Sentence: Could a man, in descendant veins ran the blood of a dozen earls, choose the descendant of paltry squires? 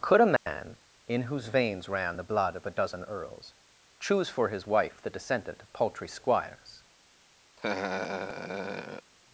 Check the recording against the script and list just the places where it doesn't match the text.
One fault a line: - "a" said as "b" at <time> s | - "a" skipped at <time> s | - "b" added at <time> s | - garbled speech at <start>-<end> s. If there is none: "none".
- "descendant" said as "whose" at 1.3 s
- "for his wife" added at 4.3 s